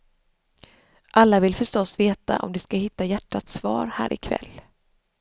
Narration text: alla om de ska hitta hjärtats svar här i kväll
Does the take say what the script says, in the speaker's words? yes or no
no